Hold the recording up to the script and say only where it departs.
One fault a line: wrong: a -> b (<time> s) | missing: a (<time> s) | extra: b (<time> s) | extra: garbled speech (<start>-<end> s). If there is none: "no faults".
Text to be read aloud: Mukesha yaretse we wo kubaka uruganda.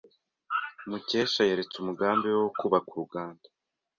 extra: umugambi (1.8 s)